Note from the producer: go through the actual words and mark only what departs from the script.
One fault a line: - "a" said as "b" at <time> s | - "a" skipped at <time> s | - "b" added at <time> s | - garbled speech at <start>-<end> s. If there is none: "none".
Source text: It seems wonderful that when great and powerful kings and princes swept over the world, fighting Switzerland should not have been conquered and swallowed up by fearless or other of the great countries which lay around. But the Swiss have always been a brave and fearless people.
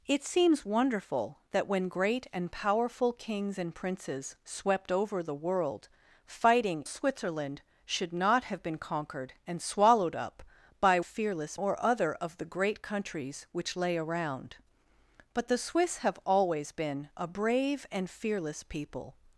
none